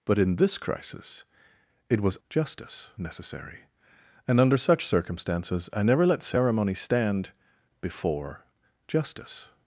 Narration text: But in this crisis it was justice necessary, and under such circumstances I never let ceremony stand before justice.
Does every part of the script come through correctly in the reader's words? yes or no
yes